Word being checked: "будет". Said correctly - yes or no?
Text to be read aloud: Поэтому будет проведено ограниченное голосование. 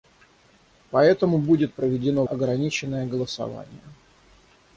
yes